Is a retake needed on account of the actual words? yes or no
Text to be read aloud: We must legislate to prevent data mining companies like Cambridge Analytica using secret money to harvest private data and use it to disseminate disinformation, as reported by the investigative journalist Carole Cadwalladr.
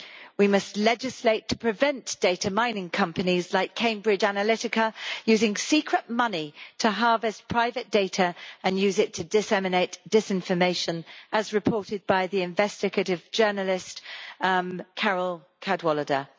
no